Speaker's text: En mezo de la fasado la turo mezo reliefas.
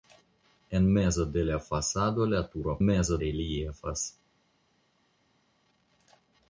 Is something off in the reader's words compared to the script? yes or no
no